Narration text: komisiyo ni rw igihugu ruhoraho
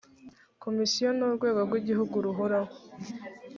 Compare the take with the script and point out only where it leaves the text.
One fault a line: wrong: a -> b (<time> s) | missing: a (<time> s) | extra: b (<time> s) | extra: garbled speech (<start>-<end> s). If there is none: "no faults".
extra: urwego (1.3 s)